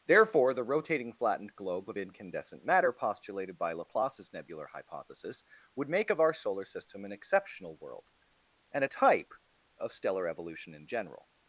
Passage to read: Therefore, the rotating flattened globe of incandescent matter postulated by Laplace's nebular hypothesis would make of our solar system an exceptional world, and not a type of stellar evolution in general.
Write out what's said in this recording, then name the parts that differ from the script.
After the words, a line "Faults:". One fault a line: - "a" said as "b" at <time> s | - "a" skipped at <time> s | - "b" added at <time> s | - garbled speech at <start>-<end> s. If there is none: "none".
Therefore, the rotating flattened globe of incandescent matter postulated by Laplace's nebular hypothesis would make of our solar system an exceptional world, and a type of stellar evolution in general.
Faults:
- "not" skipped at 8.8 s